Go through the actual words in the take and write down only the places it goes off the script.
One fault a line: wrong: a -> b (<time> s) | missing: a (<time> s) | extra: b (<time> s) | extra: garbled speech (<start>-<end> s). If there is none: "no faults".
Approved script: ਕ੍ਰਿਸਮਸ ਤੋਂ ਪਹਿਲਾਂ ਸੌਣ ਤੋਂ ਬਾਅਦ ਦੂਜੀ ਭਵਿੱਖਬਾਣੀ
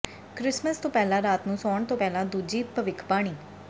extra: ਰਾਤ ਨੂੰ (1.2 s)
wrong: ਬਾਅਦ -> ਪਹਿਲਾਂ (1.9 s)